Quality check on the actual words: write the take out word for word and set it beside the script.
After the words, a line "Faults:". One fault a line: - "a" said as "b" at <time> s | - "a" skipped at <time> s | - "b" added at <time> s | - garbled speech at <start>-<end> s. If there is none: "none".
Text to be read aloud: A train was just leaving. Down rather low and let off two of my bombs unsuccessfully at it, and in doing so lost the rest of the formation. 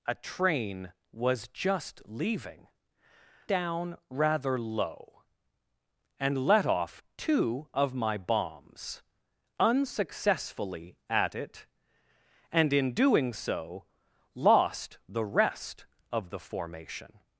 A train was just leaving. Down rather low and let off two of my bombs unsuccessfully at it, and in doing so lost the rest of the formation.
Faults:
none